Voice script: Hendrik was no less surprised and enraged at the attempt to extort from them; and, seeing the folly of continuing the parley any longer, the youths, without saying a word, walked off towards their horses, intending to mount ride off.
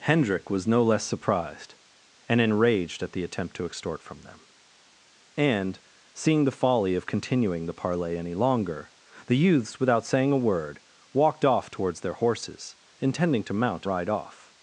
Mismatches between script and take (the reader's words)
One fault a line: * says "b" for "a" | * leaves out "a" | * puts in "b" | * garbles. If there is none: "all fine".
all fine